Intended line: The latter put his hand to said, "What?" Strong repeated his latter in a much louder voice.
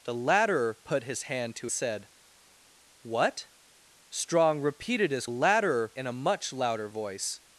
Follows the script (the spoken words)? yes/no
yes